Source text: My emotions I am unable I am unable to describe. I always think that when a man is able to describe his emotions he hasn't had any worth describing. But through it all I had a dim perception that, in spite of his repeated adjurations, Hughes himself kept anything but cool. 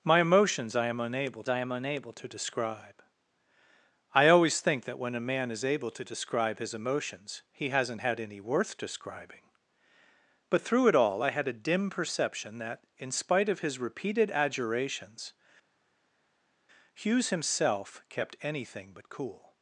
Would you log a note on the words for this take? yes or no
no